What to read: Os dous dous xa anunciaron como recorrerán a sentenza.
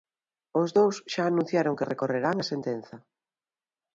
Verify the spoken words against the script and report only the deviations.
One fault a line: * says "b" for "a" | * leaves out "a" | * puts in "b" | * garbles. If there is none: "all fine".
* leaves out "dous"
* says "que" for "como"